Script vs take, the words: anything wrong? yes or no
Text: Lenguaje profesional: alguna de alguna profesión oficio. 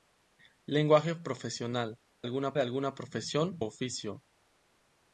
no